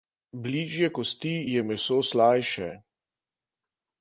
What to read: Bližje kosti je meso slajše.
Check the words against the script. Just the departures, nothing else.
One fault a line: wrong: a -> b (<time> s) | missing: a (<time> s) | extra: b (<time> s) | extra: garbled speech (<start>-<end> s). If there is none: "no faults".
no faults